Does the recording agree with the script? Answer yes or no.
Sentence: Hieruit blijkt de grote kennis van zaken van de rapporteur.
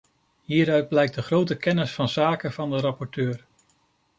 yes